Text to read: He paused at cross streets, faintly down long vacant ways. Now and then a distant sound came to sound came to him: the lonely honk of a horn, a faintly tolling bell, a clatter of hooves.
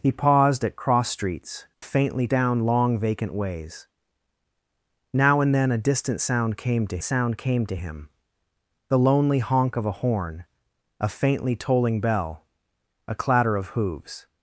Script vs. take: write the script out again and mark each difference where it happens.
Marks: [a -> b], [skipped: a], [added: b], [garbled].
He paused at cross streets, faintly down long vacant ways. Now and then a distant sound came to sound came to him: the lonely honk of a horn, a faintly tolling bell, a clatter of hooves.